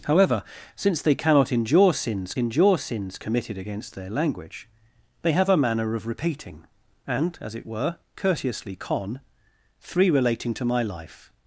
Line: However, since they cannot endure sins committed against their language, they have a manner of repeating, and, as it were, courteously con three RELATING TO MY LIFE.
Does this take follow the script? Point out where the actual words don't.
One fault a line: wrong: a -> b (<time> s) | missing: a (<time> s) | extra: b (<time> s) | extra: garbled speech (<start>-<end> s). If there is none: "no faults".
extra: endure sins (2.4 s)